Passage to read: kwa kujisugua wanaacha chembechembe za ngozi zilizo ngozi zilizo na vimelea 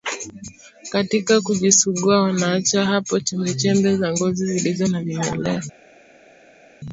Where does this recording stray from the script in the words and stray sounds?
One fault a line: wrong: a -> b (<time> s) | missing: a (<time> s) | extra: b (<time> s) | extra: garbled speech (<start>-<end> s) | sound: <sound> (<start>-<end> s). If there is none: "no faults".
wrong: kwa -> katika (0.9 s)
extra: hapo (2.8 s)
missing: ngozi zilizo (4.9 s)